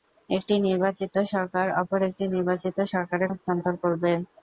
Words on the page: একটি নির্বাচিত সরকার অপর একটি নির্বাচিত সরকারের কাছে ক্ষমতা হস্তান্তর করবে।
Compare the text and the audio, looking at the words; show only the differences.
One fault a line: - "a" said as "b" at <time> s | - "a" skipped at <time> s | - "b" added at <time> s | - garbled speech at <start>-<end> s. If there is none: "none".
- "কাছে ক্ষমতা" skipped at 3.3 s